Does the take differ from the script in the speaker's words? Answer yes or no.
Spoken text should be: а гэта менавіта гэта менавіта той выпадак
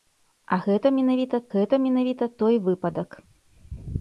no